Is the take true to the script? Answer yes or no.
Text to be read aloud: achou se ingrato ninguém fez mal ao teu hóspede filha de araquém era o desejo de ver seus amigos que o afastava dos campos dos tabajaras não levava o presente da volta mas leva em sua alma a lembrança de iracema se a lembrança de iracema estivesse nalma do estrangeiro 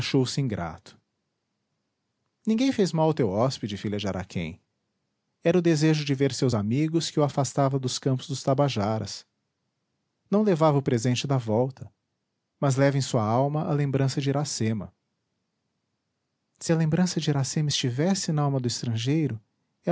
yes